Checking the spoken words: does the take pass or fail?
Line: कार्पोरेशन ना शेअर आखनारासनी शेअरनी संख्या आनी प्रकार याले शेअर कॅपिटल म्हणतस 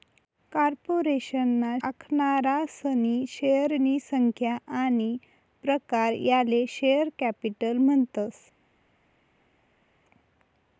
fail